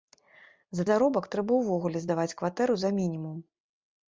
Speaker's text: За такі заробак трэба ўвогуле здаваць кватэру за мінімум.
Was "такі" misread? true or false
true